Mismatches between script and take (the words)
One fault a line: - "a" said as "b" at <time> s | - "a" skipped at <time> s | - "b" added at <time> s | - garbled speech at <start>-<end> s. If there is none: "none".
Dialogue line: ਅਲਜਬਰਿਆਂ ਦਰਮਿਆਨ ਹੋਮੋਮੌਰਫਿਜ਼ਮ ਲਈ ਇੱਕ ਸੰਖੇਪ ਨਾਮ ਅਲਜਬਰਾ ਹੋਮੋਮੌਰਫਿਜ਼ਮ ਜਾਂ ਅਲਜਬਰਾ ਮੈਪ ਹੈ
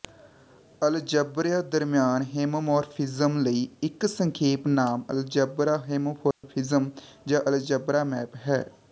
none